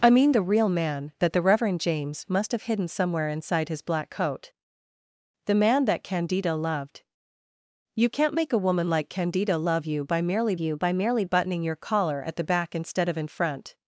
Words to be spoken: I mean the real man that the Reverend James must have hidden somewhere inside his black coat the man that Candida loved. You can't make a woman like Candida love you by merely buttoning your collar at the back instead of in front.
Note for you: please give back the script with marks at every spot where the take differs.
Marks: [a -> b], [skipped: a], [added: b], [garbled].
I mean the real man that the Reverend James must have hidden somewhere inside his black coat the man that Candida loved. You can't make a woman like Candida love you by merely [added: you by merely] buttoning your collar at the back instead of in front.